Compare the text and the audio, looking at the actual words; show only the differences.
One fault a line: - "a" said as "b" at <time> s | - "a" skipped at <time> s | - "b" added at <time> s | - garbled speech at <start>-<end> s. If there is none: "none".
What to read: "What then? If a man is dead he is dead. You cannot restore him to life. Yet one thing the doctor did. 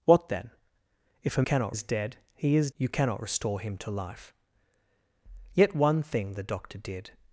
- "man" said as "cannot" at 1.4 s
- "dead" skipped at 2.7 s